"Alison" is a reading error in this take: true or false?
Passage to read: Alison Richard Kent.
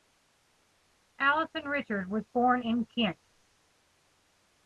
false